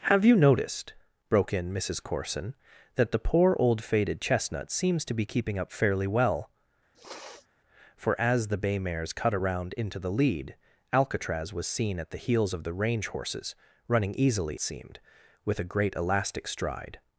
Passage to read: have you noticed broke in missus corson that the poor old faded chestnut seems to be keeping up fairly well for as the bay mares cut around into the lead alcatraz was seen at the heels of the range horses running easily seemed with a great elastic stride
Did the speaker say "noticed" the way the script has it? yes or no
yes